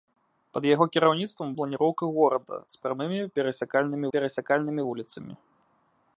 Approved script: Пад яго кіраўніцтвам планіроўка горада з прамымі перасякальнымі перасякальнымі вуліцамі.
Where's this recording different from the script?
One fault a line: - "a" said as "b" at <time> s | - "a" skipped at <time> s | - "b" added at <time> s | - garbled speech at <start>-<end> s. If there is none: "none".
none